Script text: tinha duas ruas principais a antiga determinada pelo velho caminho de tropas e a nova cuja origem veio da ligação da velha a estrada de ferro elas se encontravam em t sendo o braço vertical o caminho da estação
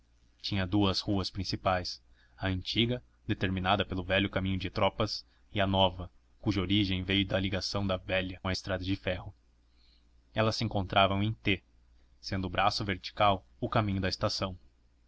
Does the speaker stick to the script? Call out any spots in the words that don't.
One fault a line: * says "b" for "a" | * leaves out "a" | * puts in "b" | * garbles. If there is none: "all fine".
all fine